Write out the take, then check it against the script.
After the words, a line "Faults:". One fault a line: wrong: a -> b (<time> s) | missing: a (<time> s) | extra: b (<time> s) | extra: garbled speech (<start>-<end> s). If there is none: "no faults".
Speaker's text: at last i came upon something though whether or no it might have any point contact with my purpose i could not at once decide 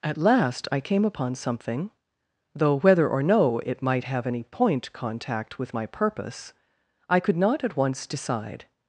at last i came upon something though whether or no it might have any point contact with my purpose i could not at once decide
Faults:
no faults